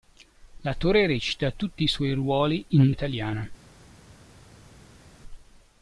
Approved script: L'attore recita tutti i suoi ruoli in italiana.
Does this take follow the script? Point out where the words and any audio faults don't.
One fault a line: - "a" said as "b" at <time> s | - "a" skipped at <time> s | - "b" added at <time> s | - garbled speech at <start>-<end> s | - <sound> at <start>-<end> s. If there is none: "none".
none